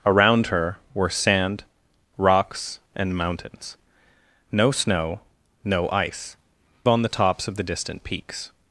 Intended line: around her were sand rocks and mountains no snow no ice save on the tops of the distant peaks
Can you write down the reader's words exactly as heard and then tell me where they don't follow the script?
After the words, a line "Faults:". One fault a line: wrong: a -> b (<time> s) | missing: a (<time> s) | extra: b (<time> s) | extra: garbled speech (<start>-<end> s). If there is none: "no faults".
around her were sand rocks and mountains no snow no ice on the tops of the distant peaks
Faults:
missing: save (6.4 s)